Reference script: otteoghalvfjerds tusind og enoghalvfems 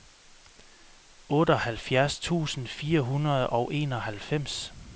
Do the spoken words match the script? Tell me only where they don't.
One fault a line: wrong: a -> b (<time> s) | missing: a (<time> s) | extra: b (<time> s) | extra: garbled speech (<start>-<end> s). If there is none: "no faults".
extra: fire hundrede (2.7 s)